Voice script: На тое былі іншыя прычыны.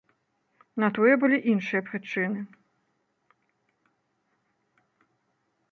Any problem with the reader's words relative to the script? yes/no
no